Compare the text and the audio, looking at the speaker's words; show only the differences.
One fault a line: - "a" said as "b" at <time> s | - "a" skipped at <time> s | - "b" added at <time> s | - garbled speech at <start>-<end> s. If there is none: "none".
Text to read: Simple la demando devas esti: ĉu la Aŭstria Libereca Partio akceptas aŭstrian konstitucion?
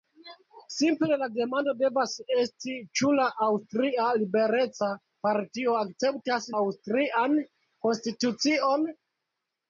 none